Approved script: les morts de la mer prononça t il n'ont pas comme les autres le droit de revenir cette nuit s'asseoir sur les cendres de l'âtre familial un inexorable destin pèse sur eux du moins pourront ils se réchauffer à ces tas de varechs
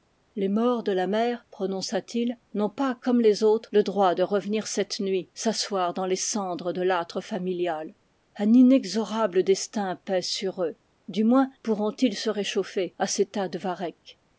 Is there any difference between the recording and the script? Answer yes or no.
yes